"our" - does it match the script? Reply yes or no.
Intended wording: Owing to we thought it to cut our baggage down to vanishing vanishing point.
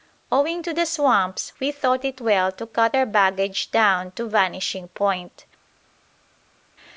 yes